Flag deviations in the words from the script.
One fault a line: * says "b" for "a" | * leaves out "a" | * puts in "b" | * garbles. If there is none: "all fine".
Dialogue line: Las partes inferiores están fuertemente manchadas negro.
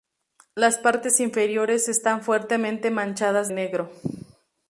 all fine